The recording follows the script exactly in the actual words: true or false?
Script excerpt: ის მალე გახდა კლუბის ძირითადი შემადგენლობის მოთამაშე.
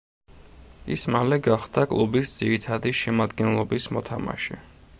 true